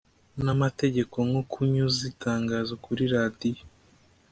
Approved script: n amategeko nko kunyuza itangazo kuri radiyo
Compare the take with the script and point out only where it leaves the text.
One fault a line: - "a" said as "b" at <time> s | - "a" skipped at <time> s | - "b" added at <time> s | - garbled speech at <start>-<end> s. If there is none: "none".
none